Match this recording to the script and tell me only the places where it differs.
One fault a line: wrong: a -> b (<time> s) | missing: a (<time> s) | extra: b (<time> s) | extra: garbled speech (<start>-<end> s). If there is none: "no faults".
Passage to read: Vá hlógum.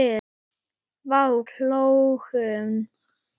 no faults